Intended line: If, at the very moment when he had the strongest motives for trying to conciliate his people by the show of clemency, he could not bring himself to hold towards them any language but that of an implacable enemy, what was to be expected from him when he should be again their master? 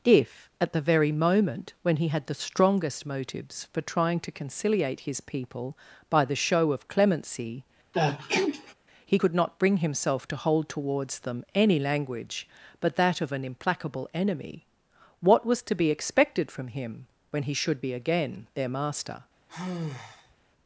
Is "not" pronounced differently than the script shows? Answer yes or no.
no